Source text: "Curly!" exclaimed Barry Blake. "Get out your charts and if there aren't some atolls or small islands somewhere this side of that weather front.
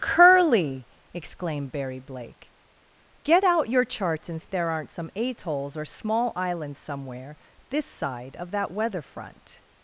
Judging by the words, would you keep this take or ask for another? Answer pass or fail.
pass